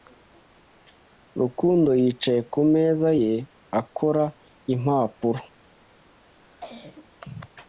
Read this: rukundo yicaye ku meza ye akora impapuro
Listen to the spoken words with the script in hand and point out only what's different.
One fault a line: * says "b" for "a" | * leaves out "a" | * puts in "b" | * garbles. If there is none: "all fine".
all fine